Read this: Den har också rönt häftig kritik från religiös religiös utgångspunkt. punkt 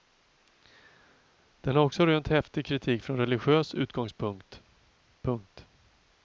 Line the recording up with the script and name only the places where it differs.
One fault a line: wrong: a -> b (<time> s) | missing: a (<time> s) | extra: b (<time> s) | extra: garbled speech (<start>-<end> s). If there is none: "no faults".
missing: religiös (3.7 s)